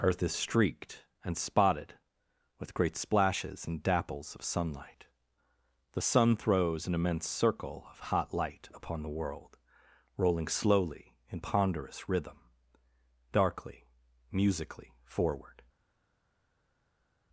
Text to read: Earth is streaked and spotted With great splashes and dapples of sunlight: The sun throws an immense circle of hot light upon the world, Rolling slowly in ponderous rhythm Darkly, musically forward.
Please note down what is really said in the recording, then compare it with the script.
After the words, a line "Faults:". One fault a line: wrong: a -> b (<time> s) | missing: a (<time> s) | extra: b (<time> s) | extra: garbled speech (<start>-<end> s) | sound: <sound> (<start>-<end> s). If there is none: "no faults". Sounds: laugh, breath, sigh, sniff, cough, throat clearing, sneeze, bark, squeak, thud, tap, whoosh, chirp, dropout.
Earth is streaked and spotted With great splashes and dapples of sunlight: The sun throws an immense circle of hot light upon the world, Rolling slowly in ponderous rhythm Darkly, musically forward.
Faults:
no faults